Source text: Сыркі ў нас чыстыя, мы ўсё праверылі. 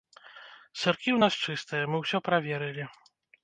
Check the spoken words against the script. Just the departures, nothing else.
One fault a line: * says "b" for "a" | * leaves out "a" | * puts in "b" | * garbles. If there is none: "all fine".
all fine